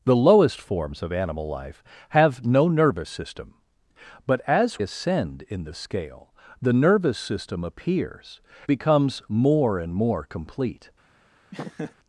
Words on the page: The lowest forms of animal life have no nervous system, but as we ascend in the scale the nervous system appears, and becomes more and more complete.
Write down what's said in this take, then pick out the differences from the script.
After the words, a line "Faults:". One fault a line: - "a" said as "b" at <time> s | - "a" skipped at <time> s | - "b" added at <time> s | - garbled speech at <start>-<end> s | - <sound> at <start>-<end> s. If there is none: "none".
The lowest forms of animal life have no nervous system, but as ascend in the scale the nervous system appears, becomes more and more complete.
Faults:
- "we" skipped at 4.8 s
- "and" skipped at 8.4 s
- laugh at 11.5-11.9 s